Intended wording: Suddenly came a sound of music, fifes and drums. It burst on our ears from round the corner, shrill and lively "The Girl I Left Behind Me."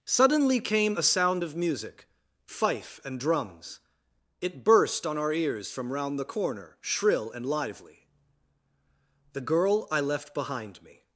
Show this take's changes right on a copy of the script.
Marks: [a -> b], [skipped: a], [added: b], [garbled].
Suddenly came a sound of music, [fifes -> fife] and drums. It burst on our ears from round the corner, shrill and lively "The Girl I Left Behind Me."